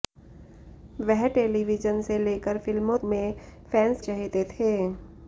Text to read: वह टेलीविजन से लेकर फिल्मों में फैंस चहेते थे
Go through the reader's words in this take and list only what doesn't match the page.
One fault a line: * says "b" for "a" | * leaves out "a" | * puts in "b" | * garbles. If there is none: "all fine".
all fine